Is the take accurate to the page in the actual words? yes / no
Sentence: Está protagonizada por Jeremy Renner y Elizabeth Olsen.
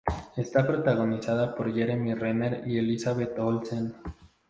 yes